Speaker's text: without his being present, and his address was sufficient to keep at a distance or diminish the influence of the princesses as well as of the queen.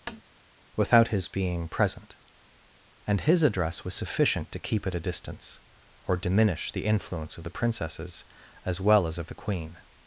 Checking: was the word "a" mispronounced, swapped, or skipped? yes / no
no